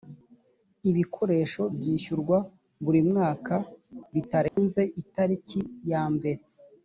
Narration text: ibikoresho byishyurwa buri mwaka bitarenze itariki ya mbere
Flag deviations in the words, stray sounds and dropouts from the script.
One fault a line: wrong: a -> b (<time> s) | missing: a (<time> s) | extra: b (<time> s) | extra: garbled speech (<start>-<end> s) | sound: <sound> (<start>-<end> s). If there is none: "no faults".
sound: dropout (4.5-4.6 s)